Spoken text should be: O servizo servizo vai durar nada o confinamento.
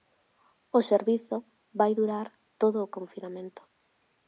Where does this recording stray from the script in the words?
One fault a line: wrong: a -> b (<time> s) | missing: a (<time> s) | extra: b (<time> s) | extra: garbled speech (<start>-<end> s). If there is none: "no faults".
missing: servizo (1.4 s)
wrong: nada -> todo (2.6 s)